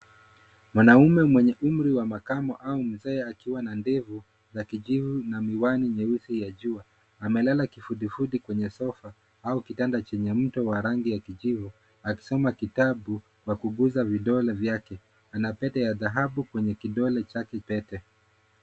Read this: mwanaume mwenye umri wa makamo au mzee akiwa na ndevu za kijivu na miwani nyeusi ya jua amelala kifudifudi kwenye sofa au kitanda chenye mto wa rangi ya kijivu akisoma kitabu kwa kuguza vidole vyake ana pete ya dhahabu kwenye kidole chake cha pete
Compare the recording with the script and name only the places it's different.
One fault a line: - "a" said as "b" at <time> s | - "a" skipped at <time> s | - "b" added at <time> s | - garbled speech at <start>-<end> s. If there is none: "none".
- "cha" skipped at 17.6 s